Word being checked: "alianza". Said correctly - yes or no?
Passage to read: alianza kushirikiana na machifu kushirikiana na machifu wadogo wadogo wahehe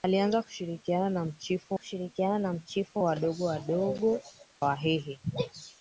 yes